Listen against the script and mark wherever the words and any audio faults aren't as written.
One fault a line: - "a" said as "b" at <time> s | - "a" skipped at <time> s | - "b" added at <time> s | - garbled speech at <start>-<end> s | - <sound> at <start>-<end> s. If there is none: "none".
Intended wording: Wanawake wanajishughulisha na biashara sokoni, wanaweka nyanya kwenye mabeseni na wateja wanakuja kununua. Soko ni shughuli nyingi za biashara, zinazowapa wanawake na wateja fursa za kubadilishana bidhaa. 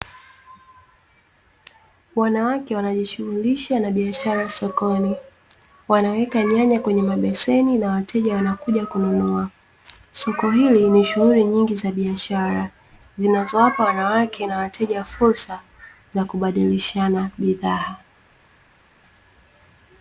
- "hili" added at 10.5 s